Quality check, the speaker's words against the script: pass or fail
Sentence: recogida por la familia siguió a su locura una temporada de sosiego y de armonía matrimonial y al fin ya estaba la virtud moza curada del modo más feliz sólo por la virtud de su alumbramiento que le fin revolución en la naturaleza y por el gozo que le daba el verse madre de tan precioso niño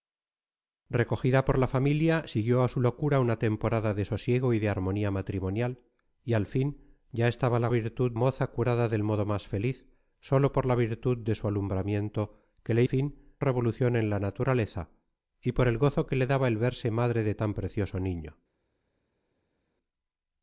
pass